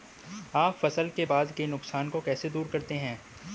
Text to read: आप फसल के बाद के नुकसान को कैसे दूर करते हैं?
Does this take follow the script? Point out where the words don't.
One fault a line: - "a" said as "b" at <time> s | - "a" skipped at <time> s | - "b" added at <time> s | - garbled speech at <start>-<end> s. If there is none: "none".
none